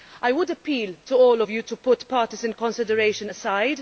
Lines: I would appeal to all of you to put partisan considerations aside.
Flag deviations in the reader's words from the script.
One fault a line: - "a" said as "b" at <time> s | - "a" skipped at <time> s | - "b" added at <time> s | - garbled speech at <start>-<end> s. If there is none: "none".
none